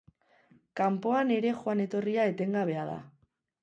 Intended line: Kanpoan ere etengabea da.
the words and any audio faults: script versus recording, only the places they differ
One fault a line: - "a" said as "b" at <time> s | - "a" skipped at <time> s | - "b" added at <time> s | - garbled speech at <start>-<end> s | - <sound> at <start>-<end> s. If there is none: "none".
- "joan etorria" added at 1.6 s